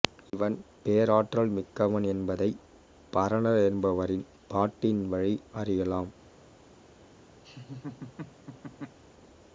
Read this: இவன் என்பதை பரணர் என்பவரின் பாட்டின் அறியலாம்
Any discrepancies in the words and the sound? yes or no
yes